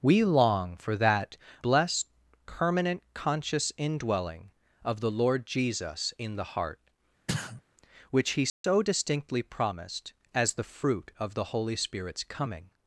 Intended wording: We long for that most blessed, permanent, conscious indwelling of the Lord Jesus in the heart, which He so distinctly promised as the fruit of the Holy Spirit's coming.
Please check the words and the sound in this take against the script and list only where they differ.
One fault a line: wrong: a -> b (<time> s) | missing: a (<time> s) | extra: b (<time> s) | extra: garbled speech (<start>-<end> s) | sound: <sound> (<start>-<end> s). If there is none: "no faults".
missing: most (1.4 s)
sound: sneeze (7.3-7.6 s)
sound: dropout (8.5-8.6 s)